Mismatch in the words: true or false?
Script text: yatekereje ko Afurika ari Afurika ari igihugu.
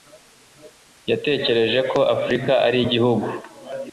true